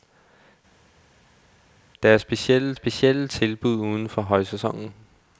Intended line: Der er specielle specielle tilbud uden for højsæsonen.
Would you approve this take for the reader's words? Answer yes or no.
yes